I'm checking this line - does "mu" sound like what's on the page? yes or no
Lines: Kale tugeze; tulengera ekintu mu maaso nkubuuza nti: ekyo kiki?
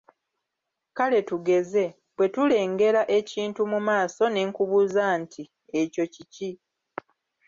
yes